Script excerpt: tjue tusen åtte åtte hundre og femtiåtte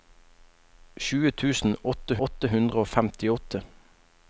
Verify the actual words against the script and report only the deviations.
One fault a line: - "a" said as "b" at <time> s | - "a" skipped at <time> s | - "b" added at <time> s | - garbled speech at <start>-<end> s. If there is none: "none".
none